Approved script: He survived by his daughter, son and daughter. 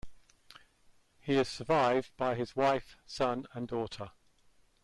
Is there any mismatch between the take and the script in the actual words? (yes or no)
yes